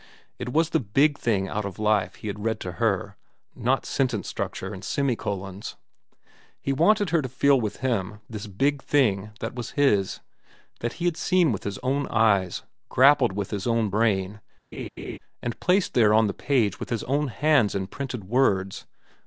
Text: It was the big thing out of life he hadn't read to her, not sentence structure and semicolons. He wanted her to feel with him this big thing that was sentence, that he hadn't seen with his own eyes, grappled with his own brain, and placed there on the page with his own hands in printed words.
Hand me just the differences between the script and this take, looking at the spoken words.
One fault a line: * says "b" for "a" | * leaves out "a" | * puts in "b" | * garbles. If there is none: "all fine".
* says "had" for "hadn't"
* says "his" for "sentence"
* says "had" for "hadn't"